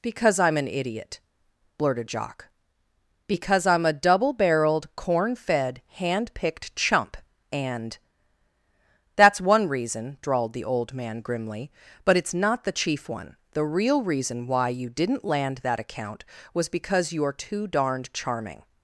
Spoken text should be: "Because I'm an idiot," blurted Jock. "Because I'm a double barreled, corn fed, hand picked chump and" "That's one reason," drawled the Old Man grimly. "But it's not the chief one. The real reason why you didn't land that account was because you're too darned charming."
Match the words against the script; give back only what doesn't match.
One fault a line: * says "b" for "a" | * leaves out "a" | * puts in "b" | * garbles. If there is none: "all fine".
all fine